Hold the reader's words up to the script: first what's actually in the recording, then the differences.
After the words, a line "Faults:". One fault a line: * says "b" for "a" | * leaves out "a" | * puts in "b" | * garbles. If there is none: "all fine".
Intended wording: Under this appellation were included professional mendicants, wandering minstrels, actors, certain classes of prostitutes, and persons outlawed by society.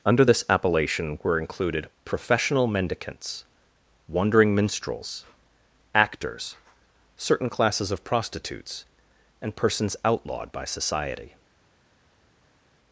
Under this appellation were included professional mendicants, wandering minstrels, actors, certain classes of prostitutes, and persons outlawed by society.
Faults:
all fine